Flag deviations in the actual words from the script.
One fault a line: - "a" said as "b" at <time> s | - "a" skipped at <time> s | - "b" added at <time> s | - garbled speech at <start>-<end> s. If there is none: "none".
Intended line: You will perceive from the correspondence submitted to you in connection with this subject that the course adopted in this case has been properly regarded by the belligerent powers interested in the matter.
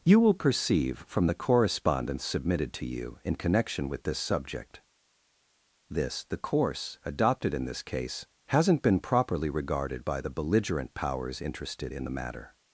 - "that" said as "this" at 5.9 s
- "has" said as "hasn't" at 8.5 s